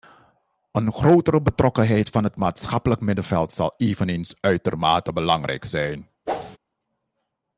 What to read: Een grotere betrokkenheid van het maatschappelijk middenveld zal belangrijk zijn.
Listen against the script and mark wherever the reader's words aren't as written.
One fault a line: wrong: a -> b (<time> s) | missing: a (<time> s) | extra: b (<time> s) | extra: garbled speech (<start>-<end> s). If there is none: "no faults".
extra: eveneens uitermate (3.8 s)